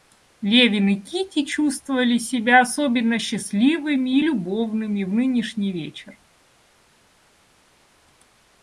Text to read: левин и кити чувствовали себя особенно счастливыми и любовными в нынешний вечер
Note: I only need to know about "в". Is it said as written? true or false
true